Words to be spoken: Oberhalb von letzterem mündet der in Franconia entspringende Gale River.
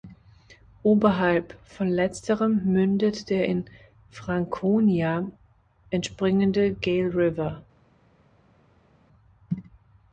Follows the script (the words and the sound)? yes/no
yes